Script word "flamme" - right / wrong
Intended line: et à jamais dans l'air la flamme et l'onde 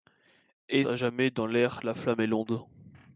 right